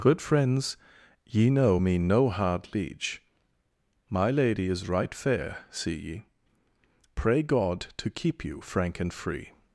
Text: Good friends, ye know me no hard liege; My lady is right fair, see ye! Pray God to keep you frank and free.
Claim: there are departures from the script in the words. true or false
false